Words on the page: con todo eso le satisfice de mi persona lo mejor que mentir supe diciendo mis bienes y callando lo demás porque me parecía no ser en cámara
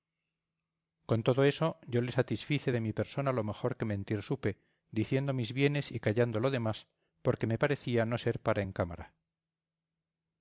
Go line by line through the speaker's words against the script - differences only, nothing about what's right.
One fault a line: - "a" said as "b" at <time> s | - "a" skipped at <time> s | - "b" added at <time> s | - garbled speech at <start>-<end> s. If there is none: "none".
- "yo" added at 1.9 s
- "para" added at 8.4 s